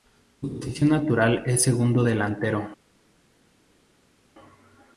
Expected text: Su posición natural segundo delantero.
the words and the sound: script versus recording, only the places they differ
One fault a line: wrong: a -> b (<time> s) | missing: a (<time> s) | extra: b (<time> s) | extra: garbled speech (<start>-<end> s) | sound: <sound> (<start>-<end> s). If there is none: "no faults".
extra: es (1.5 s)